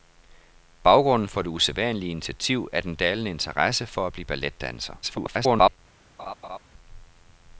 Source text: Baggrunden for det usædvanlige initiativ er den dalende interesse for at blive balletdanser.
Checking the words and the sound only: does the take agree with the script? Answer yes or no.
no